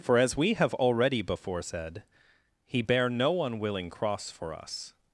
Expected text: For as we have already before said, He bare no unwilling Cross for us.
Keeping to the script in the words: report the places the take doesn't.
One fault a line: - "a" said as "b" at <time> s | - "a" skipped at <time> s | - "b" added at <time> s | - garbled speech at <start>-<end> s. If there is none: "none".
none